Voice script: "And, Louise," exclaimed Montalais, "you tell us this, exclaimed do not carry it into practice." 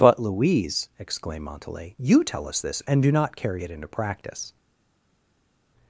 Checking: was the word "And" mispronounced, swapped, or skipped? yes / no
yes